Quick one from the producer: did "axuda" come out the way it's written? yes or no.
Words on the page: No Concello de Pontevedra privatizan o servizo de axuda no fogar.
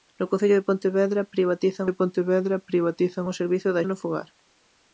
no